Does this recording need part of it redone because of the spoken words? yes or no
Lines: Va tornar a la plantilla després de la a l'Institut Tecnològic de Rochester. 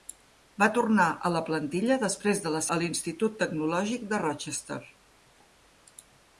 no